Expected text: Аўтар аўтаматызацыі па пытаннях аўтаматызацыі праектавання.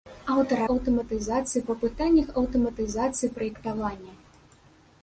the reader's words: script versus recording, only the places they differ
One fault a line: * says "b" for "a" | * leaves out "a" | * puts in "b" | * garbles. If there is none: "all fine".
all fine